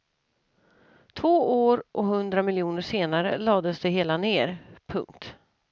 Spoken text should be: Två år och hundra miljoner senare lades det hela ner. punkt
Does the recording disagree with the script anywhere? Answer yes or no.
no